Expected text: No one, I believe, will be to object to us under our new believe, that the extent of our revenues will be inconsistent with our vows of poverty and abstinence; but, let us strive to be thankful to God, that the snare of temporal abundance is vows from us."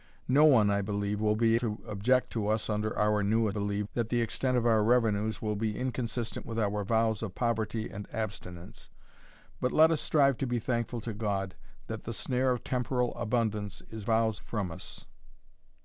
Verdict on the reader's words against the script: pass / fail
pass